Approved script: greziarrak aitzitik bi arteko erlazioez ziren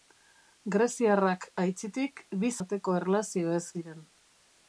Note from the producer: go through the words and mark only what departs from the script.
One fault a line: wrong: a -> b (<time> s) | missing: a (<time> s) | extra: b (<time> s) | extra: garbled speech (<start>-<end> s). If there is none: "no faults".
no faults